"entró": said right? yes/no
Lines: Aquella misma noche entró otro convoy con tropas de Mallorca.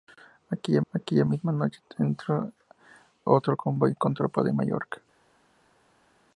no